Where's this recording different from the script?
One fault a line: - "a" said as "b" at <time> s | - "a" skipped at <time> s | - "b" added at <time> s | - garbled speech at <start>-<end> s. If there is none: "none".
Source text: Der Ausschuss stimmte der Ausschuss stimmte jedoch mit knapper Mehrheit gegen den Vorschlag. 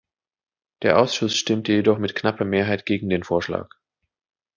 - "der Ausschuss stimmte" skipped at 1.7 s